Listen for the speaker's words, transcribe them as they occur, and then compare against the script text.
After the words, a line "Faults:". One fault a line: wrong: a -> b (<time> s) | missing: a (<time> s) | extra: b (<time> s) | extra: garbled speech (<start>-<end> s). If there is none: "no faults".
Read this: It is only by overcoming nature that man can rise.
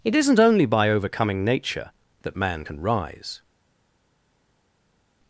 It isn't only by overcoming nature that man can rise.
Faults:
wrong: is -> isn't (0.1 s)